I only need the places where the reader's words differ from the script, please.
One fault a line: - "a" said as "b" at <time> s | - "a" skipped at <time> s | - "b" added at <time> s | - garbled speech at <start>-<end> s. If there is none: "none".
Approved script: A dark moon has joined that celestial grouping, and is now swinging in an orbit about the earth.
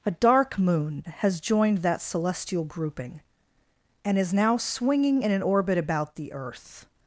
none